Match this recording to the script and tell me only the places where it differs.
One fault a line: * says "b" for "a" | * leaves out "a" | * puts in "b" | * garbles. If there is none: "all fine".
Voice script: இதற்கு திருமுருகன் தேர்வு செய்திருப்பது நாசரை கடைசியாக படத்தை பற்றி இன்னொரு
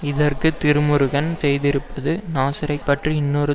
* leaves out "தேர்வு"
* leaves out "கடைசியாக படத்தை"